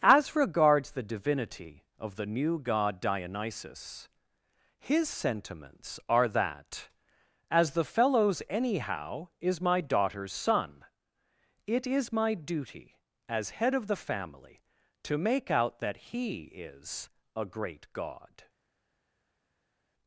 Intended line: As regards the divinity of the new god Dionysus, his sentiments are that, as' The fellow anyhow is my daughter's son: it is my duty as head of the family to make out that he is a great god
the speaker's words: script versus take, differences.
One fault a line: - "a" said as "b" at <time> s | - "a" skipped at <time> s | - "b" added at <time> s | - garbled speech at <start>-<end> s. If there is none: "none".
- "fellow" said as "fellows" at 7.8 s